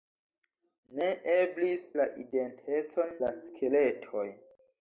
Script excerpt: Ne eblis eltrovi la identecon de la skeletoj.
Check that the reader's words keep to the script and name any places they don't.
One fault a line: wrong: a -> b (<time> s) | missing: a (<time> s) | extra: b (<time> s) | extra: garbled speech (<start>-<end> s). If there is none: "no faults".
missing: eltrovi (1.8 s)
missing: de (3.1 s)